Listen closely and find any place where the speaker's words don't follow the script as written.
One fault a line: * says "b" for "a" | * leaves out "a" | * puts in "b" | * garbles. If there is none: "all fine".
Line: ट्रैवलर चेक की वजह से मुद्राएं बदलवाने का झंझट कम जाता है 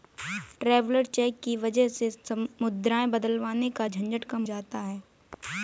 all fine